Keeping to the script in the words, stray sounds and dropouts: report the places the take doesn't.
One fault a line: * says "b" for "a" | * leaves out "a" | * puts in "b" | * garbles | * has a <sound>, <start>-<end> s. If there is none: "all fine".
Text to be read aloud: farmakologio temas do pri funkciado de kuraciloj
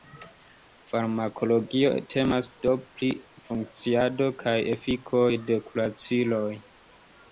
* puts in "kaj efikoj"